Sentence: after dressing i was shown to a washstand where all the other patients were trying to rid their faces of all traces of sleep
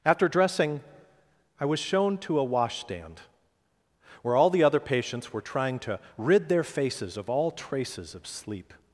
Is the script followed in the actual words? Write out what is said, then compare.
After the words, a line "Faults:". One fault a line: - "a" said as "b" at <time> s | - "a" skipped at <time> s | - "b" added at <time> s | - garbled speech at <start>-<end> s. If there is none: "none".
after dressing i was shown to a washstand where all the other patients were trying to rid their faces of all traces of sleep
Faults:
none